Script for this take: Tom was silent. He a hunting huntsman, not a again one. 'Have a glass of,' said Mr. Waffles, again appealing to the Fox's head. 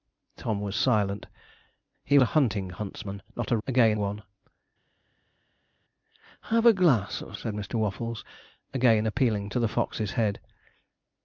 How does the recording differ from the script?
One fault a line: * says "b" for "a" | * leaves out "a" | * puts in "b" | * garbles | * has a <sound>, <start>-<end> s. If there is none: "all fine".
all fine